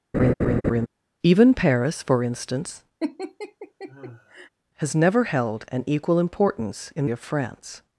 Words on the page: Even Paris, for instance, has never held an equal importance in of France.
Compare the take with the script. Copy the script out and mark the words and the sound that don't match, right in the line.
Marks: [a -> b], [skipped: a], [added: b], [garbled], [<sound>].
[laugh] Even Paris, for instance, [laugh] has never held an equal importance in of France.